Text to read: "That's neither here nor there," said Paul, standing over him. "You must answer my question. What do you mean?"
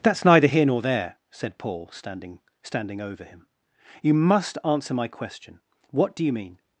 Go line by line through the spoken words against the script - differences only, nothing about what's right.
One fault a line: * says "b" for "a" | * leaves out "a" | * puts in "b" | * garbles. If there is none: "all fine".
* puts in "standing"